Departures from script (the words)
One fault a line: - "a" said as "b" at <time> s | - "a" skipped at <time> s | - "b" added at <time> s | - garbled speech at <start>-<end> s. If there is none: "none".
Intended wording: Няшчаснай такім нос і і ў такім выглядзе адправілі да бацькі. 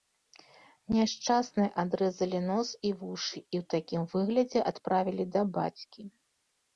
- "такім" said as "адрэзалі" at 1.8 s
- "вушы" added at 3.0 s